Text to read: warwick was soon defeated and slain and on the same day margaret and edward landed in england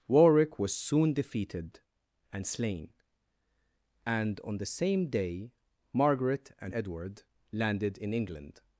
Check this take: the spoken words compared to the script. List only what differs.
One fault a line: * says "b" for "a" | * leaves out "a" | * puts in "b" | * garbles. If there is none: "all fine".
all fine